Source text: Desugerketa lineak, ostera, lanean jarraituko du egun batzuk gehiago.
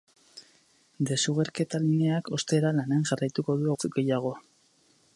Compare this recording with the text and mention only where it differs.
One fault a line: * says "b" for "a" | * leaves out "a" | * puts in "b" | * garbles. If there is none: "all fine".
* leaves out "egun"